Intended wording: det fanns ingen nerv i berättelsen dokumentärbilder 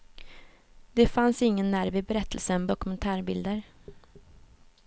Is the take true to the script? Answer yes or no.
yes